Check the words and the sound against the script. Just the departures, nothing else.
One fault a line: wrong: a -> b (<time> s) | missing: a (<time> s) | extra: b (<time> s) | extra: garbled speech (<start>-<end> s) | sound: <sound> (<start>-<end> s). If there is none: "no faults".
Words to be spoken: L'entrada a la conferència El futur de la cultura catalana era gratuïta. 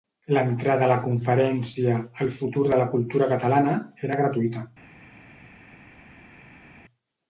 no faults